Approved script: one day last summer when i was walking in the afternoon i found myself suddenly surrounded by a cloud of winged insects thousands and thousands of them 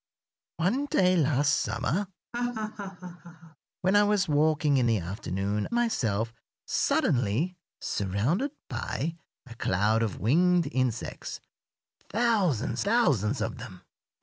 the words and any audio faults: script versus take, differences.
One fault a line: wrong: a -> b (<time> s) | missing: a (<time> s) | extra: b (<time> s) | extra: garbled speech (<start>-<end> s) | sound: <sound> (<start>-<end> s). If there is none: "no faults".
sound: laugh (2.3-3.6 s)
missing: i found (5.7 s)
missing: and (12.8 s)